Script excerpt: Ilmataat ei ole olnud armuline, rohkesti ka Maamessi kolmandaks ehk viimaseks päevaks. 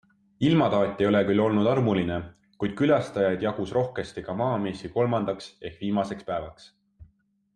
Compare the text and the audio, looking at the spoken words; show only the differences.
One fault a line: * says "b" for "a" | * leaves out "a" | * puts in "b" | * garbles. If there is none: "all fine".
* puts in "küll"
* puts in "kuid külastajaid jagus"